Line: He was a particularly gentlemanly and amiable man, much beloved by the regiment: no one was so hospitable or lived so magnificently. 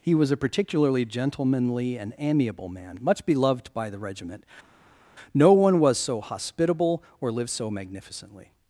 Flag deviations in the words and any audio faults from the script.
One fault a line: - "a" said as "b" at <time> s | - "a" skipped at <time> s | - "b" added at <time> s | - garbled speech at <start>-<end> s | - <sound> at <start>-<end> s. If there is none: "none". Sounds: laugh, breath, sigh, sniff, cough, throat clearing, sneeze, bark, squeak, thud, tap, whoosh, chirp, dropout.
none